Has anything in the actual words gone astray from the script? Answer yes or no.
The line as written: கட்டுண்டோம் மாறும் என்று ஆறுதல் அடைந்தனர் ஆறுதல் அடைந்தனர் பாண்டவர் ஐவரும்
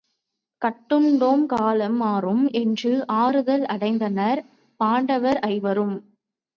yes